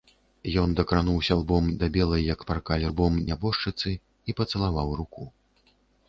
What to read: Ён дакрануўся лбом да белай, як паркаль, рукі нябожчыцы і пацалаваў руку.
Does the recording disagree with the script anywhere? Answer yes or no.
yes